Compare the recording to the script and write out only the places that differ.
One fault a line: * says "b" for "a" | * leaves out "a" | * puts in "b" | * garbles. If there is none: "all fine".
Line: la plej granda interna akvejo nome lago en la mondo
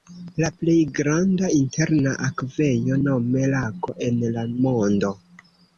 all fine